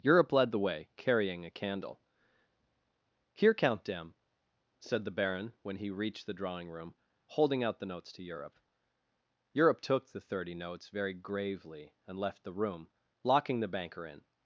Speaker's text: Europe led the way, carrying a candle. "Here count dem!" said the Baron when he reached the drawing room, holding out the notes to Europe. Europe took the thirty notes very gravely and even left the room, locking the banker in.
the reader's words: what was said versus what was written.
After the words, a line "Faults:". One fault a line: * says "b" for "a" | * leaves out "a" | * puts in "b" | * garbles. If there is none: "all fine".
Europe led the way, carrying a candle. "Here count dem!" said the Baron when he reached the drawing room, holding out the notes to Europe. Europe took the thirty notes very gravely and left the room, locking the banker in.
Faults:
* leaves out "even"